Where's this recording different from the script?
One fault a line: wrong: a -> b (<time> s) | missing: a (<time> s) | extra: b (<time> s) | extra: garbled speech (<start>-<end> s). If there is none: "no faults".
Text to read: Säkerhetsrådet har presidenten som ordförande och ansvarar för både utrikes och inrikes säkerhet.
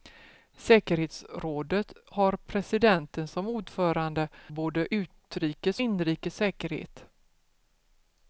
missing: och ansvarar för (4.3 s)
missing: och (5.8 s)